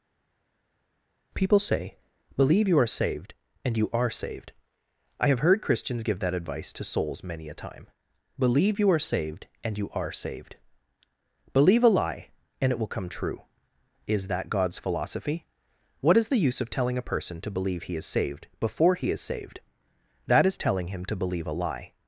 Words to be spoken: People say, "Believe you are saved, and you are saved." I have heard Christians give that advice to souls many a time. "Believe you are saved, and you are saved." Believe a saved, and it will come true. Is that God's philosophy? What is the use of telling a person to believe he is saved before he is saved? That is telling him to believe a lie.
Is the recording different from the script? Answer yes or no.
yes